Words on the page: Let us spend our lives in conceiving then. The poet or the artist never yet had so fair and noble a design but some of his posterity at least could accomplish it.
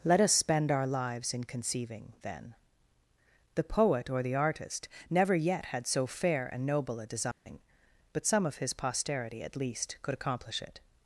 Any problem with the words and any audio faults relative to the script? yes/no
yes